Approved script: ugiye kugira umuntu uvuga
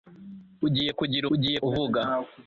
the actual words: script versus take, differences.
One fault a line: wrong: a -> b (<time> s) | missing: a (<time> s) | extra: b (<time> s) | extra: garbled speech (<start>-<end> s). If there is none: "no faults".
wrong: umuntu -> ugiye (1.3 s)